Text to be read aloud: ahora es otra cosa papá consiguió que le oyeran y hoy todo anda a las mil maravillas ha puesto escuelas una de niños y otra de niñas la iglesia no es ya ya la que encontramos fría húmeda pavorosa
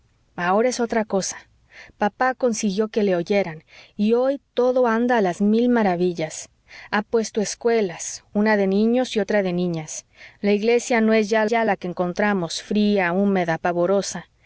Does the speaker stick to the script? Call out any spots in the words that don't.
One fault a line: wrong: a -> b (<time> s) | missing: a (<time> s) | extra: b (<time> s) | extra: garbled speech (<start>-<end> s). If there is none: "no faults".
no faults